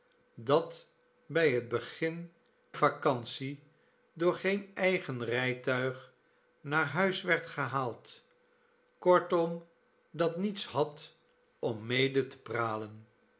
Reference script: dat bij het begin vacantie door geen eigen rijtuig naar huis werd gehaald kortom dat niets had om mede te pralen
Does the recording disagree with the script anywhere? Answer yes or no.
no